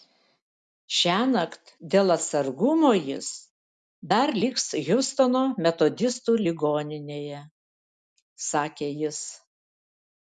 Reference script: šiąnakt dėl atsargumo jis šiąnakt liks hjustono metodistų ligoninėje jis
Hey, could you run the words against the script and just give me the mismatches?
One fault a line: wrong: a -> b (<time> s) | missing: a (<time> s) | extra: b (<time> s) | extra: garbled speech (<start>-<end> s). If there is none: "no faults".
wrong: šiąnakt -> dar (4.1 s)
extra: sakė (8.5 s)